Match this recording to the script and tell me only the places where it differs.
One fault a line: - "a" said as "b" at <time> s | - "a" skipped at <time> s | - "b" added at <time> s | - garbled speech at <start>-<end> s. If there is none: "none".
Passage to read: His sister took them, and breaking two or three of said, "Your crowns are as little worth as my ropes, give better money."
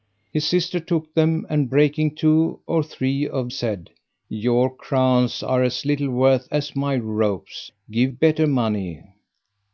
none